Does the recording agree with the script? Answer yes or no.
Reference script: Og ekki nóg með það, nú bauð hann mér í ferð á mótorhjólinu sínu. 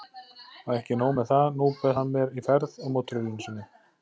yes